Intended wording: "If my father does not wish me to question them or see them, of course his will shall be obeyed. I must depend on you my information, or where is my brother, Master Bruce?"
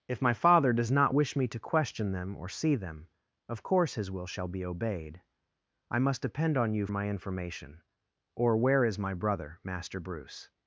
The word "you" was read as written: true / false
true